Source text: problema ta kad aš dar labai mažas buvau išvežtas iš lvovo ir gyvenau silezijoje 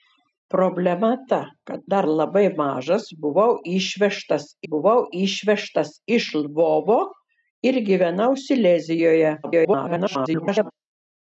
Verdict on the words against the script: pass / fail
fail